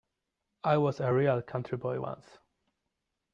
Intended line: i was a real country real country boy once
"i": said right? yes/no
yes